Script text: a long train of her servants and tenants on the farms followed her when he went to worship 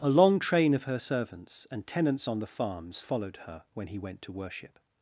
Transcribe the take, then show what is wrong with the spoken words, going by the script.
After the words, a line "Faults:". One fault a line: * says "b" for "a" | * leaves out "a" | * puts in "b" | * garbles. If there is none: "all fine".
a long train of her servants and tenants on the farms followed her when he went to worship
Faults:
all fine